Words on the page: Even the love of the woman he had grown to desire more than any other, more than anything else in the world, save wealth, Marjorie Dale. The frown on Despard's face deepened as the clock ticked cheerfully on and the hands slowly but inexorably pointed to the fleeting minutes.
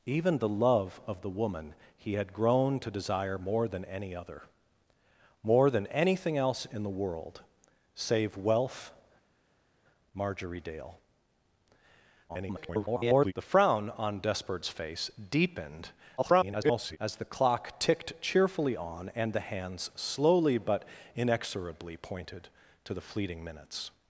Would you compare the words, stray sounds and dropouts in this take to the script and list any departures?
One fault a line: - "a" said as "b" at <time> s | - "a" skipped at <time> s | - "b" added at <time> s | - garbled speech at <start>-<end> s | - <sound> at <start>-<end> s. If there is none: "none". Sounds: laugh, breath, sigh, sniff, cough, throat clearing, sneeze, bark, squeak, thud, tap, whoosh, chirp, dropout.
- garbled speech at 12.3-13.3 s
- garbled speech at 16.2-17.0 s